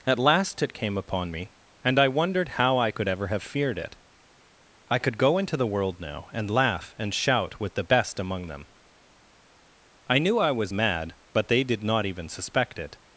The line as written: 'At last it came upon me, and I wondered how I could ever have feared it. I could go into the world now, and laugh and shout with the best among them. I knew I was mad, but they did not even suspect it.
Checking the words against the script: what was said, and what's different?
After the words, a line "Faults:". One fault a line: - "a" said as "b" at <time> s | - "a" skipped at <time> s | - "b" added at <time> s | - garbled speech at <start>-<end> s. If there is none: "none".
'At last it came upon me, and I wondered how I could ever have feared it. I could go into the world now, and laugh and shout with the best among them. I knew I was mad, but they did not even suspect it.
Faults:
none